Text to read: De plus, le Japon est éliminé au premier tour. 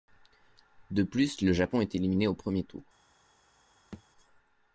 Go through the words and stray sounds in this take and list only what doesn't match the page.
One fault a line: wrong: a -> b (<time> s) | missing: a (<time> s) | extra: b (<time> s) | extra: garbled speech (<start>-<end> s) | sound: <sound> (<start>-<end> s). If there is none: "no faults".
sound: thud (3.9-4.0 s)